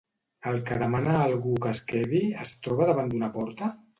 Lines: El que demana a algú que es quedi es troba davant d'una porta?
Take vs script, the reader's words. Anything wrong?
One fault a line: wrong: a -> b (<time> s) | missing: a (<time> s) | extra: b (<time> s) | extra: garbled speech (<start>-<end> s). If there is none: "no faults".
no faults